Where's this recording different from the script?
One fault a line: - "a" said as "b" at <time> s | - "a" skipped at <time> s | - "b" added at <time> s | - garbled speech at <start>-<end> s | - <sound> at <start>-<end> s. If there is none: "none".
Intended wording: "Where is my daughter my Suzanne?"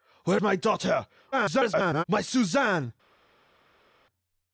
- "is" skipped at 0.4 s
- garbled speech at 1.3-2.0 s